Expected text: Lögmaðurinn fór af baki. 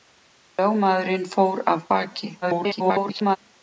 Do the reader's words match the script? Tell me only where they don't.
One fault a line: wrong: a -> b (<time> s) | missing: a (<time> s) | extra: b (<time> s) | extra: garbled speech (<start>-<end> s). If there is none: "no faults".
extra: garbled speech (2.4-3.4 s)